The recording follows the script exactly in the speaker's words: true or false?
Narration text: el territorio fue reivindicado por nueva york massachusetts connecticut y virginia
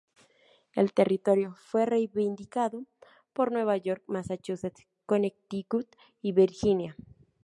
true